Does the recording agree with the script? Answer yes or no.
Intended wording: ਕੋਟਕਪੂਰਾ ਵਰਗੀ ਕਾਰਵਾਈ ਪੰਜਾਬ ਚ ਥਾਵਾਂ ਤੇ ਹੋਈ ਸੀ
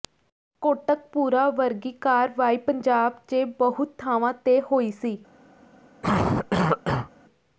no